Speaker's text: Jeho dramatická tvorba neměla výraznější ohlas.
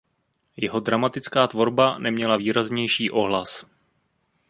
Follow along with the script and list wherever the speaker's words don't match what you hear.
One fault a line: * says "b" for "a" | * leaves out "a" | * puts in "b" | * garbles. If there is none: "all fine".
all fine